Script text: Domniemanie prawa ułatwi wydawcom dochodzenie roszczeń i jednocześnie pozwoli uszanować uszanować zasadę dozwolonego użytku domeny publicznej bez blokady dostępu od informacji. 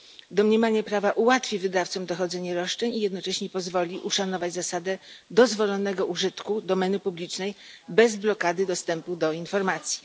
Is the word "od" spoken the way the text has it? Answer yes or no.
no